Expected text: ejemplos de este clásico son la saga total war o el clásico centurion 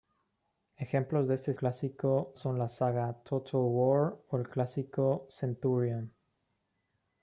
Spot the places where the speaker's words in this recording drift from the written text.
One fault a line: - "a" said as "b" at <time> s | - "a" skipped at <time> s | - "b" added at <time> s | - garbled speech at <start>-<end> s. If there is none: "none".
none